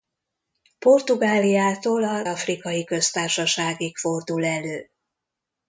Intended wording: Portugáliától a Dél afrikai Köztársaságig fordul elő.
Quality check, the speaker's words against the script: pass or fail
fail